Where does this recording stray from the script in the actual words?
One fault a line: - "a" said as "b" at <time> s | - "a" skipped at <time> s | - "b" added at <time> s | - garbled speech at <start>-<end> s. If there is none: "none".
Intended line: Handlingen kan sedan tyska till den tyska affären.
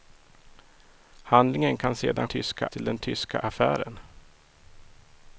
none